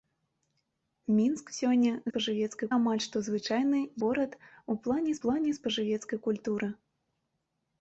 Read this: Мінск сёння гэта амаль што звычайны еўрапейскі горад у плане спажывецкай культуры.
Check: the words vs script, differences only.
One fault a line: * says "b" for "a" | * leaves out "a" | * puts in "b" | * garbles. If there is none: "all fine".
* says "спажывецкай" for "гэта"
* leaves out "еўрапейскі"
* puts in "плане"